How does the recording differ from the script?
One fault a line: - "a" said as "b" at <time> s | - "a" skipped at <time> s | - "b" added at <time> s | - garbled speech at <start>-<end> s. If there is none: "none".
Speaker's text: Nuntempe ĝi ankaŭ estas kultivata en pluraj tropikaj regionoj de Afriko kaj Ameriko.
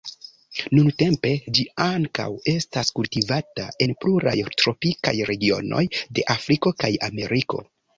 none